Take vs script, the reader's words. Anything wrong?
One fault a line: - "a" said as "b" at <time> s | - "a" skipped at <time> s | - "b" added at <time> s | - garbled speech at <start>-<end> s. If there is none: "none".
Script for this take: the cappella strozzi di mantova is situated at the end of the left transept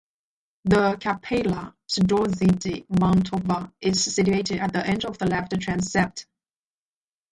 none